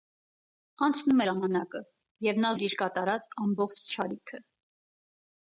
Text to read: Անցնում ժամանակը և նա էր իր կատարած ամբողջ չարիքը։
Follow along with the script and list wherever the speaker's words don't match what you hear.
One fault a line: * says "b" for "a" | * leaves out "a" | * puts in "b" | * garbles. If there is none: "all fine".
all fine